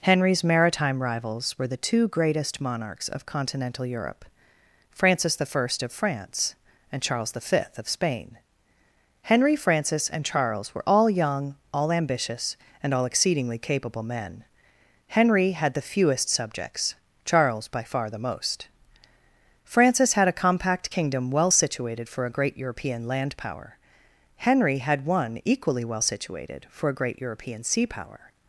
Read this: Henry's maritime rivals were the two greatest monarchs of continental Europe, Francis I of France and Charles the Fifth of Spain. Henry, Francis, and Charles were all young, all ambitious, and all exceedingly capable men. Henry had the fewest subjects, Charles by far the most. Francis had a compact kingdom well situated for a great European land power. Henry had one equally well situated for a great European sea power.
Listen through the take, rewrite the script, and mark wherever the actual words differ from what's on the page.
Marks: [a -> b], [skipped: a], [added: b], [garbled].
Henry's maritime rivals were the two greatest monarchs of continental Europe, Francis I of France and Charles the Fifth of Spain. Henry, Francis, and Charles were all young, all ambitious, and all exceedingly capable men. Henry had the fewest subjects, Charles by far the most. Francis had a compact kingdom well situated for a great European land power. Henry had one equally well situated for a great European sea power.